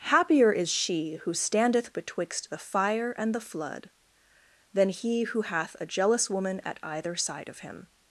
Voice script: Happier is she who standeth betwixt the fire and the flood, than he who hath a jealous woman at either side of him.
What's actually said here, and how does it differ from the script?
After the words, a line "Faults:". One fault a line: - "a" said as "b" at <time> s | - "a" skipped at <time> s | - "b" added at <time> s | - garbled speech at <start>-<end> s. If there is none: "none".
Happier is she who standeth betwixt the fire and the flood, than he who hath a jealous woman at either side of him.
Faults:
none